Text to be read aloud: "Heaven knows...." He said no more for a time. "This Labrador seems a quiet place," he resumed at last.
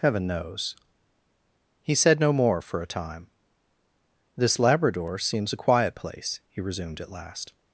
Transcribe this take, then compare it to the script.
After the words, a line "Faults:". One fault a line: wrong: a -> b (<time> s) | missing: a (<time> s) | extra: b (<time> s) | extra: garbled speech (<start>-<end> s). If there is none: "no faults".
"Heaven knows...." He said no more for a time. "This Labrador seems a quiet place," he resumed at last.
Faults:
no faults